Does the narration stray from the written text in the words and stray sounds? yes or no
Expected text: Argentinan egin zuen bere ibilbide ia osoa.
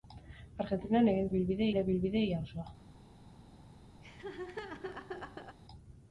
yes